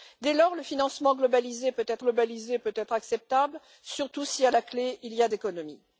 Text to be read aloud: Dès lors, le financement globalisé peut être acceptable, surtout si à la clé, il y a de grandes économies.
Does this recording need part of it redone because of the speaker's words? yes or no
yes